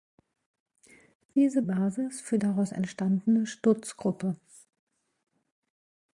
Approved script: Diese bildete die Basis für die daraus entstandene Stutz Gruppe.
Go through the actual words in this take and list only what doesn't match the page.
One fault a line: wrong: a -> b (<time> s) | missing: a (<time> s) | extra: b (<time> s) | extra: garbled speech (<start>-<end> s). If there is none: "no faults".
missing: bildete die (1.6 s)
missing: die (2.4 s)